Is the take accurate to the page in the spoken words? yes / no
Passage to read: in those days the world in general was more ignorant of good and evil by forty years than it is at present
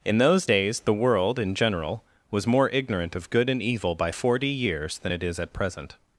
yes